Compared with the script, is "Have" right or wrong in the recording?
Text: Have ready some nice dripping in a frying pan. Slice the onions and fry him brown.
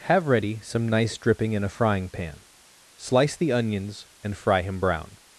right